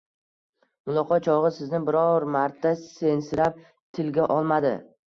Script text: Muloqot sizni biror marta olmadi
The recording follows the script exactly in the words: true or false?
false